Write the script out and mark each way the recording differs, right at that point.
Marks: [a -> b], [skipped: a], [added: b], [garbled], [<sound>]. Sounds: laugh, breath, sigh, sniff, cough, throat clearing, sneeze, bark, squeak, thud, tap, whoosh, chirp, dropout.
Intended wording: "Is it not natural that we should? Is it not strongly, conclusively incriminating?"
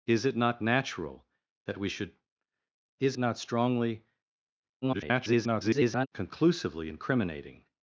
"Is it not natural that we should? Is [skipped: it] not strongly, [garbled] conclusively incriminating?"